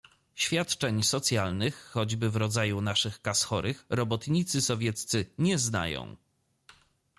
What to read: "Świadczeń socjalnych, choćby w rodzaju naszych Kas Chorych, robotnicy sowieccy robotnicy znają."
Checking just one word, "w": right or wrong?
right